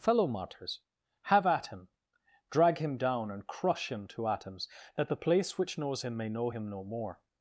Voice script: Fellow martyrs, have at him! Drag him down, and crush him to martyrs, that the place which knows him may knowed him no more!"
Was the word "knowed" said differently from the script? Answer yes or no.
yes